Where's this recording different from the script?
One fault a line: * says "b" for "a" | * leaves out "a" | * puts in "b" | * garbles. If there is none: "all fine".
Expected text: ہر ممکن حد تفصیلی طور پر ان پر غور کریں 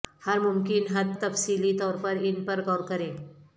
all fine